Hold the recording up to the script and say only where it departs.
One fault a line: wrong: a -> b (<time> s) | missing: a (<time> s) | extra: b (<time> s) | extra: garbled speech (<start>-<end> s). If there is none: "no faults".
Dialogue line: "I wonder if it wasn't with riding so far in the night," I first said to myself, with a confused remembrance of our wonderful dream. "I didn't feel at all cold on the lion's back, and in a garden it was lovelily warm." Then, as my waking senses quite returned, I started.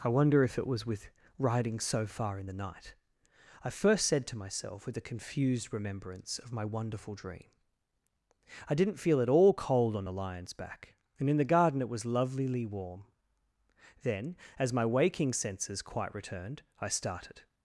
wrong: wasn't -> was (0.7 s)
wrong: our -> my (6.5 s)
wrong: a -> the (11.4 s)